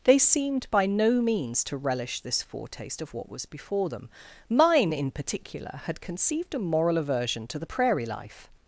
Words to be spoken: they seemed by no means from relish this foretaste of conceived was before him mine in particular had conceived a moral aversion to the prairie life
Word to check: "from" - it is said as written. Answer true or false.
false